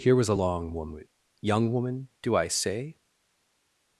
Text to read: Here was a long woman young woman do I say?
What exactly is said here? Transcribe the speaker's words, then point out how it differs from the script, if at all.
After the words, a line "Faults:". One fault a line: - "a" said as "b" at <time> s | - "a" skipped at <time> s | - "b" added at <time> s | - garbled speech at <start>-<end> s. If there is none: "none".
Here was a long woman young woman do I say?
Faults:
none